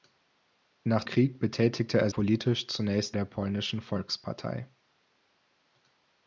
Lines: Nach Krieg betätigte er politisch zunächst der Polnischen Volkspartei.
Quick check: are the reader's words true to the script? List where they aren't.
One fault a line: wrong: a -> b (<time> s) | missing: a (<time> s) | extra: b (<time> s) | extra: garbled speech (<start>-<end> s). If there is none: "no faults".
no faults